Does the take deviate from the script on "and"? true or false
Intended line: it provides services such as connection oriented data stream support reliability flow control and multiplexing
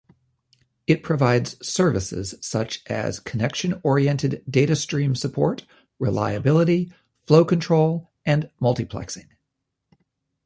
false